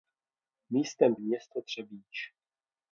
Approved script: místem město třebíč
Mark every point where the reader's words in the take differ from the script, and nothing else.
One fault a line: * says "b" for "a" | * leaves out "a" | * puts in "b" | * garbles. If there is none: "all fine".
all fine